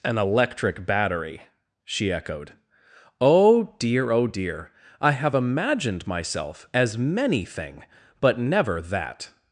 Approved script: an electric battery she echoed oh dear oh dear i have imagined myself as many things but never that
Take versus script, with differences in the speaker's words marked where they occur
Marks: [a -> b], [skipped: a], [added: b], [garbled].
an electric battery she echoed oh dear oh dear i have imagined myself as many [things -> thing] but never that